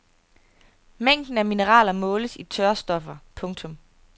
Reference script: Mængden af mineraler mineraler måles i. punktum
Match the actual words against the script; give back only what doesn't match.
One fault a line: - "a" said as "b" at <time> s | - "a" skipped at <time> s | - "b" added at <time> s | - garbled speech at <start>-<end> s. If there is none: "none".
- "mineraler" skipped at 1.9 s
- "tørstoffer" added at 2.4 s